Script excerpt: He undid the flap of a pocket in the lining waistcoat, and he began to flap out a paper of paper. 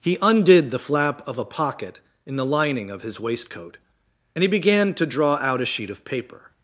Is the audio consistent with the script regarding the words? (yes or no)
no